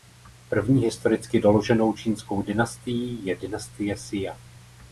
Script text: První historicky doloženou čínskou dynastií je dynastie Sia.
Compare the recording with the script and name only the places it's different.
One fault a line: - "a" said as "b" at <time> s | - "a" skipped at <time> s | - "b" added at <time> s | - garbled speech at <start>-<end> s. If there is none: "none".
none